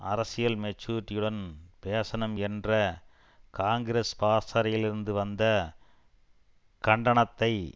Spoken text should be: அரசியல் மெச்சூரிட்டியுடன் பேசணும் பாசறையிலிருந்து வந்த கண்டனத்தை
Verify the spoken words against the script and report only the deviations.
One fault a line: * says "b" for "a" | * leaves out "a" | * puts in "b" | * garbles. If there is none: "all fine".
* puts in "என்ற காங்கிரஸ்"